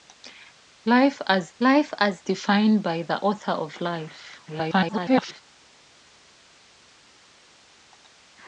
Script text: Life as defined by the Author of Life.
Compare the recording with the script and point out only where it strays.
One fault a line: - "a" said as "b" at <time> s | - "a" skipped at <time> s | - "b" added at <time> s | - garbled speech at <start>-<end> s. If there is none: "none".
- "life as" added at 1.6 s
- garbled speech at 4.5-5.4 s